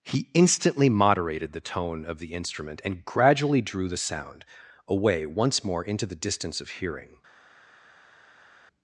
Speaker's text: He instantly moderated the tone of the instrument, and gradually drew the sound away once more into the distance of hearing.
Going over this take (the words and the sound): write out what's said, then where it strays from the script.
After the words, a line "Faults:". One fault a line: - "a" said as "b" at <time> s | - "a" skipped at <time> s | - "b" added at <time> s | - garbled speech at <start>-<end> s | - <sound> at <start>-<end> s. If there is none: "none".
He instantly moderated the tone of the instrument, and gradually drew the sound away once more into the distance of hearing.
Faults:
none